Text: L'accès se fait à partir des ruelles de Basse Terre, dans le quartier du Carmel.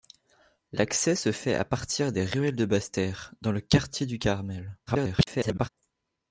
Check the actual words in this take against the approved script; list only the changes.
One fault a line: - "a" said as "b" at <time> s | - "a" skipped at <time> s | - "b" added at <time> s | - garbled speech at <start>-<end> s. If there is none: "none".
- garbled speech at 4.9-5.7 s